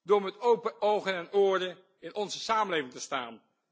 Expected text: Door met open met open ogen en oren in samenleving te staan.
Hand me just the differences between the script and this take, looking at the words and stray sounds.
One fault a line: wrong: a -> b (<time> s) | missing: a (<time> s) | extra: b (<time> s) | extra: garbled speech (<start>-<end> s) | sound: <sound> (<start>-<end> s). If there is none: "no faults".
missing: met open (0.8 s)
extra: onze (2.2 s)